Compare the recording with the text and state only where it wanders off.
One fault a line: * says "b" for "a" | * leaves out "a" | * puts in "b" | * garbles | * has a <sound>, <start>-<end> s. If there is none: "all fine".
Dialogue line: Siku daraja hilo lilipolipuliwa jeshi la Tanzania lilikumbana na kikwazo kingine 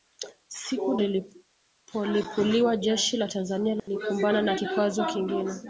* leaves out "daraja hilo"
* has a dropout, 3.8-3.9 s